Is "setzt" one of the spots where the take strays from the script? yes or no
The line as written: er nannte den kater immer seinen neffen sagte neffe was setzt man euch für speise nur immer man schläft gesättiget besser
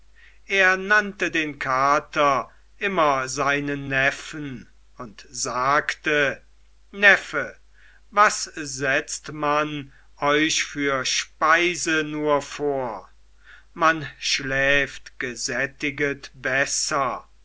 no